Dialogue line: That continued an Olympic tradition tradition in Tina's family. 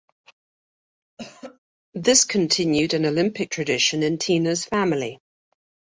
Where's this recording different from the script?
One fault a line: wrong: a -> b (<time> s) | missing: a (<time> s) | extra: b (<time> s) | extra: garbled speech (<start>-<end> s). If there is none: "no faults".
wrong: That -> This (1.9 s)
missing: tradition (4.0 s)